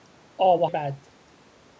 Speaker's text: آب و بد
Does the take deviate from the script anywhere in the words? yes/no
no